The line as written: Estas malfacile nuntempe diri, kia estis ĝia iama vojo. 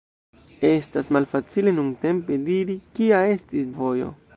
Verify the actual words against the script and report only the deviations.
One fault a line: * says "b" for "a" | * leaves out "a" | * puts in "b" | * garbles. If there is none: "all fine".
* leaves out "ĝia iama"